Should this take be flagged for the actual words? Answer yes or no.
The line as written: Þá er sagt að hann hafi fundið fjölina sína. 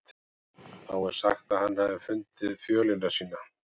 no